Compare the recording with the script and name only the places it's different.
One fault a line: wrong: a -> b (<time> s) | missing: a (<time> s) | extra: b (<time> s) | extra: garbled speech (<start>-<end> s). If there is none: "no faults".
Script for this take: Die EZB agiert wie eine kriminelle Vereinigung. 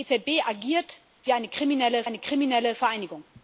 extra: eine kriminelle (2.0 s)